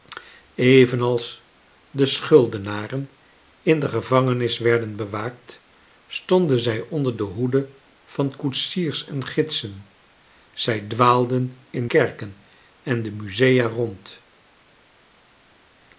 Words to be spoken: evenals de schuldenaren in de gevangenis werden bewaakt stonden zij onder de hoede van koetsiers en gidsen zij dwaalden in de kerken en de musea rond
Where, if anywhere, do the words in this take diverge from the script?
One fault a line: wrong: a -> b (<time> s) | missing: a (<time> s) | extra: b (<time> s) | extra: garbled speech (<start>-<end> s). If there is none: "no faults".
missing: de (11.9 s)